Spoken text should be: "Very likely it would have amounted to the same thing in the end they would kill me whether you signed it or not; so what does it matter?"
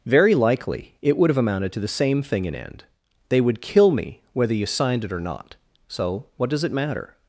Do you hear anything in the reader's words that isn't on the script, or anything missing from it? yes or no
yes